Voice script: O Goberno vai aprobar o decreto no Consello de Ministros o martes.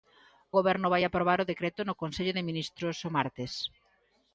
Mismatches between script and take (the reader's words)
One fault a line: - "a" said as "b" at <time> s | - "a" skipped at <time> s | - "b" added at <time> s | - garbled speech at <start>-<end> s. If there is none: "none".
none